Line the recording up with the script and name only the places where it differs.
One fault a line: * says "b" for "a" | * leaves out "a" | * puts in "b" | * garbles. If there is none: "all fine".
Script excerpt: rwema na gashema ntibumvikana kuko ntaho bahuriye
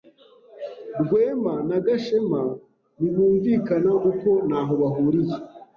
all fine